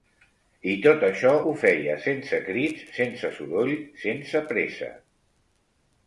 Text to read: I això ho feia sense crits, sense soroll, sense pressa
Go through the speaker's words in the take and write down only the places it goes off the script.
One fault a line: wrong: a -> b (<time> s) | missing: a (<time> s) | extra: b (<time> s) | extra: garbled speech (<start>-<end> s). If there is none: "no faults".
extra: tot (0.8 s)